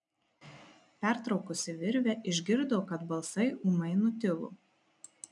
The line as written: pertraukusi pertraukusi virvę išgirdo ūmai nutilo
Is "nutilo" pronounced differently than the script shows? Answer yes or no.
no